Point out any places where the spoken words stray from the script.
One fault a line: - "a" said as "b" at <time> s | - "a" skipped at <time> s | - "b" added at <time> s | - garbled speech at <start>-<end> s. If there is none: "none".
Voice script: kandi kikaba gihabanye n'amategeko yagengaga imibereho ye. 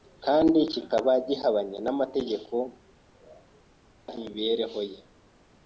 - "yagengaga" skipped at 2.6 s